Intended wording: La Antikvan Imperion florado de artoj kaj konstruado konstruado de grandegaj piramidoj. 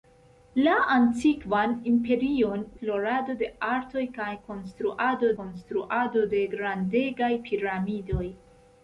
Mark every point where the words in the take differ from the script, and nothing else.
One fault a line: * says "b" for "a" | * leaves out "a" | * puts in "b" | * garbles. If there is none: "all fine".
all fine